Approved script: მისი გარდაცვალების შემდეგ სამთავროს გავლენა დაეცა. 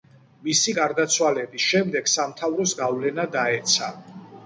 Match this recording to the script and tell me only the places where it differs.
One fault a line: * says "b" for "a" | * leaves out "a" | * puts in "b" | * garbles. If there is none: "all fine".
all fine